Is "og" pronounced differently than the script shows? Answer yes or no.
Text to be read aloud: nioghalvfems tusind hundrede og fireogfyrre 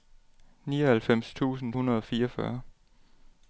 no